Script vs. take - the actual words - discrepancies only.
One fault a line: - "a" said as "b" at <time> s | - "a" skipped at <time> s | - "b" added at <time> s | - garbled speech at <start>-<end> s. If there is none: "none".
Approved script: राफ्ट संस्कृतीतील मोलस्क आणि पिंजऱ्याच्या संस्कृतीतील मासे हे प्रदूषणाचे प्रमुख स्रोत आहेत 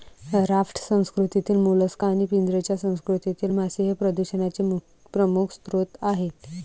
none